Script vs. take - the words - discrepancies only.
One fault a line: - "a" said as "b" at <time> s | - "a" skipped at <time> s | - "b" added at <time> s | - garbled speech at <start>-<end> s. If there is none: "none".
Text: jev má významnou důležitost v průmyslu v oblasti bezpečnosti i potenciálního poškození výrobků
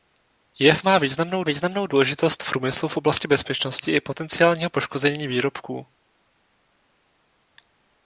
- "významnou" added at 1.4 s